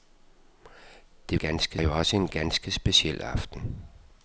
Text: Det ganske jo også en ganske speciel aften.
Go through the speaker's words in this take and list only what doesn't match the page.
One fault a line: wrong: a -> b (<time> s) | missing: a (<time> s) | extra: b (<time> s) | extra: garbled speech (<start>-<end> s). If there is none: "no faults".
no faults